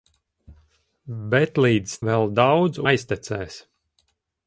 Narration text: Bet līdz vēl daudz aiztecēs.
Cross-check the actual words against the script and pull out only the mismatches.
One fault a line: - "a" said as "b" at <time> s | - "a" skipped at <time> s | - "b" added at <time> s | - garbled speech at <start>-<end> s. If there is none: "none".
none